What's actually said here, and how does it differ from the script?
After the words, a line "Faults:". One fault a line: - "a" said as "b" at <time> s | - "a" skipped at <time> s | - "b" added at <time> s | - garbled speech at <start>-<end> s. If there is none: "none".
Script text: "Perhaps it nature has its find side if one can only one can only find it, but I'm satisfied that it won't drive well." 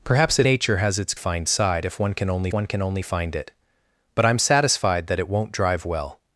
"Perhaps it nature has its find side if one can only one can only find it, but I'm satisfied that it won't drive well."
Faults:
none